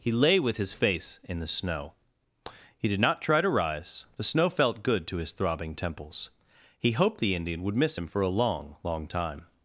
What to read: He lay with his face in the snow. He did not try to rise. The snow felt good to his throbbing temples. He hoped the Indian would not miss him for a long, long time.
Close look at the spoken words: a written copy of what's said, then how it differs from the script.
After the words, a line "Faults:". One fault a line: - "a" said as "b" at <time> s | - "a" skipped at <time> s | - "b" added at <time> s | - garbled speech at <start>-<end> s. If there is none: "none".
He lay with his face in the snow. He did not try to rise. The snow felt good to his throbbing temples. He hoped the Indian would miss him for a long, long time.
Faults:
- "not" skipped at 7.8 s